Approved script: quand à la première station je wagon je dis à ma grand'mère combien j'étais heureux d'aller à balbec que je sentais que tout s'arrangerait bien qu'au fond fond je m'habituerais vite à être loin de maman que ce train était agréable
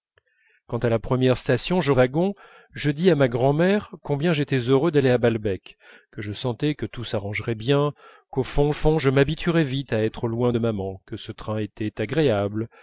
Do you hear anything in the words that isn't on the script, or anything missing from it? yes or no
no